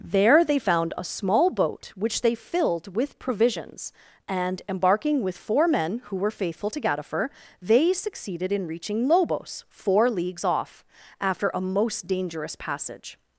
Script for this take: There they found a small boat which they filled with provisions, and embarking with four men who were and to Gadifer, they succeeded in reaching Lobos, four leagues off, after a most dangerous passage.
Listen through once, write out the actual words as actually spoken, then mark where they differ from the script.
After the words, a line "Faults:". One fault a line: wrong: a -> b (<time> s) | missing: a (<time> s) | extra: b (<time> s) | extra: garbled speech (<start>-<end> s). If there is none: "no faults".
There they found a small boat which they filled with provisions, and embarking with four men who were faithful to Gadifer, they succeeded in reaching Lobos, four leagues off, after a most dangerous passage.
Faults:
wrong: and -> faithful (6.3 s)